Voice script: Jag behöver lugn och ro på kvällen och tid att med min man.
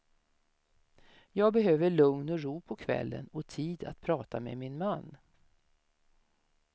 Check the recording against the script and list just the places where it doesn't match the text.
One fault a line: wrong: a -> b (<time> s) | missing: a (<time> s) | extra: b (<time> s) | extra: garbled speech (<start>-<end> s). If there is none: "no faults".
extra: prata (4.0 s)